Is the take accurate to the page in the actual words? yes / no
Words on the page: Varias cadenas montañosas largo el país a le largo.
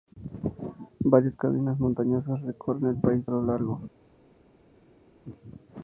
no